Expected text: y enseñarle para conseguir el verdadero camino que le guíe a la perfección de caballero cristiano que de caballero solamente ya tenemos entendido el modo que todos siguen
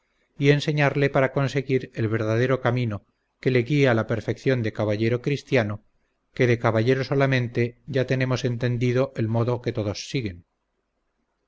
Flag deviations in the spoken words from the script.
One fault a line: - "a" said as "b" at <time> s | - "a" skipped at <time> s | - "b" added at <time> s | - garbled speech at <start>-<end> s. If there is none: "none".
none